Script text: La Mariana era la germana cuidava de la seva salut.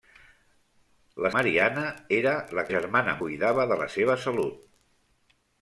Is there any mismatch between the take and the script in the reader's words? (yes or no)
no